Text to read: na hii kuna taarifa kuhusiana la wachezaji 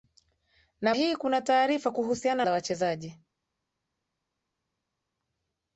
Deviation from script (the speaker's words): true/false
false